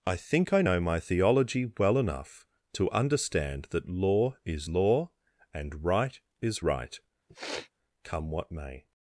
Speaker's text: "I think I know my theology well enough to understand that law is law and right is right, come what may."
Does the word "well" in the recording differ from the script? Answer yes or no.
no